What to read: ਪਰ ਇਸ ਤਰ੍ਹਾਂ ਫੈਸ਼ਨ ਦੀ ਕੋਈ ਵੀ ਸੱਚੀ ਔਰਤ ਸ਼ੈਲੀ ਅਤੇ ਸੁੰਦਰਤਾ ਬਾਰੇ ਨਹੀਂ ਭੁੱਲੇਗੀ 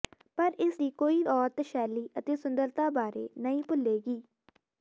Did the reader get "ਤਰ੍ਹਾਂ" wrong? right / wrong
wrong